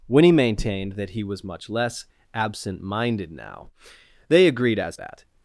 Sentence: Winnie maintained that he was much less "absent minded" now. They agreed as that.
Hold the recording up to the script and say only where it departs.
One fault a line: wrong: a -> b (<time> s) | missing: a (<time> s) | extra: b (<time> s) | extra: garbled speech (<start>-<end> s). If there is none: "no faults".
no faults